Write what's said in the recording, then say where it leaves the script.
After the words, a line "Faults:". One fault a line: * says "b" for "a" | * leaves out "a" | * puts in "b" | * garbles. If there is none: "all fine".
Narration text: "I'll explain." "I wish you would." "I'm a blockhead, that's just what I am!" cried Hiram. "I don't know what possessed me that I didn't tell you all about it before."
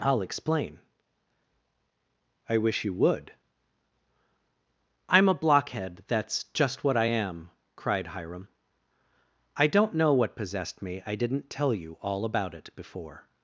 "I'll explain." "I wish you would." "I'm a blockhead, that's just what I am!" cried Hiram. "I don't know what possessed me I didn't tell you all about it before."
Faults:
* leaves out "that"